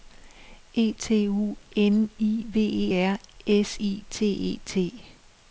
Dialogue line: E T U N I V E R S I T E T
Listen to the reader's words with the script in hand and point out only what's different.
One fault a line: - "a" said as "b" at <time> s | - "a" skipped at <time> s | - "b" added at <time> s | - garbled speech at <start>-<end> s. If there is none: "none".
none